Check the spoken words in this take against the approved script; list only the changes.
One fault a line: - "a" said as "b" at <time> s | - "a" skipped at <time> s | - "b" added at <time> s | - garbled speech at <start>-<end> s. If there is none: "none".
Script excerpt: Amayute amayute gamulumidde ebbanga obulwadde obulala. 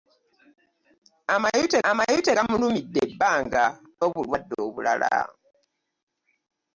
none